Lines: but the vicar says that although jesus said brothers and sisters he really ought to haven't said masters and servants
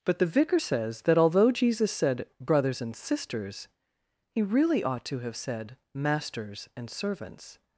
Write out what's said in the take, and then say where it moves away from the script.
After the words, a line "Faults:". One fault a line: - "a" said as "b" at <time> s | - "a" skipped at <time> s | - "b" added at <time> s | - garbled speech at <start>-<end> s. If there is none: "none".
but the vicar says that although jesus said brothers and sisters he really ought to have said masters and servants
Faults:
- "haven't" said as "have" at 5.2 s